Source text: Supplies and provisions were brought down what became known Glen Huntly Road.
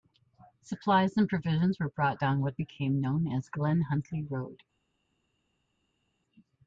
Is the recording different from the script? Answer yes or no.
yes